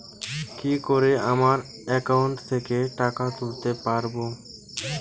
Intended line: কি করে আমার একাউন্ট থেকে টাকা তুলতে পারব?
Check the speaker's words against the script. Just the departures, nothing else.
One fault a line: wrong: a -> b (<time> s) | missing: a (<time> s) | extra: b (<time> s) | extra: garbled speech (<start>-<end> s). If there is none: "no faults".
no faults